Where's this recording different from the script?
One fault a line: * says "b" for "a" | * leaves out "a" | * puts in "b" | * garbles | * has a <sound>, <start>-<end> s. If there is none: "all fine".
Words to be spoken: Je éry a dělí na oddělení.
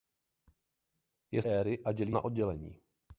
all fine